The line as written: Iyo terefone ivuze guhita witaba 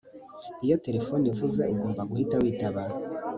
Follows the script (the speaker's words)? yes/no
no